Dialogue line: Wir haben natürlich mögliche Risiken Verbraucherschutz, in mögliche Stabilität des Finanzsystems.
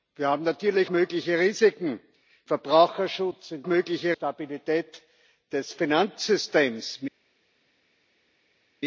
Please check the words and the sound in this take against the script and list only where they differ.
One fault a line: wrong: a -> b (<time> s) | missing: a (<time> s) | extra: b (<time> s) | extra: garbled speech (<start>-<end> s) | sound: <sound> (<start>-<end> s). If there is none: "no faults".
no faults